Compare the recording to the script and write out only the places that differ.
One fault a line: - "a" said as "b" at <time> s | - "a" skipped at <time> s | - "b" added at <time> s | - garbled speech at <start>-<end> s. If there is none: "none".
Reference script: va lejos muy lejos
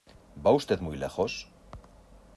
- "lejos" said as "usted" at 0.5 s